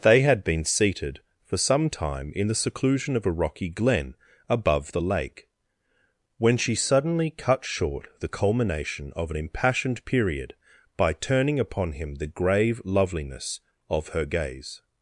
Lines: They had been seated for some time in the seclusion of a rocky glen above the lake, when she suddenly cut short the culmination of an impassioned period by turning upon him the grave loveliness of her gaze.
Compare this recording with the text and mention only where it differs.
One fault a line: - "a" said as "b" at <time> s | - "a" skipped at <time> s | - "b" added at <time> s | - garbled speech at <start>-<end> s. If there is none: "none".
none